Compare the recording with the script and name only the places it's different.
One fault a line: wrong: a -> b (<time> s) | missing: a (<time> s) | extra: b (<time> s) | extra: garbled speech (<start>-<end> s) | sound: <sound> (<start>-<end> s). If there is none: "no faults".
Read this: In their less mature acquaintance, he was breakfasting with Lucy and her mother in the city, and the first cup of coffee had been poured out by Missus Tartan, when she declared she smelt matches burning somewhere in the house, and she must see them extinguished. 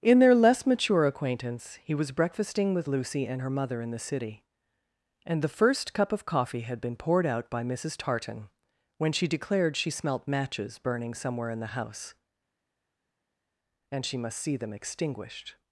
no faults